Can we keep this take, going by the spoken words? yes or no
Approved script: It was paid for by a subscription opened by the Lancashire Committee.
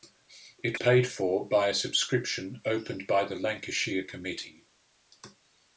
no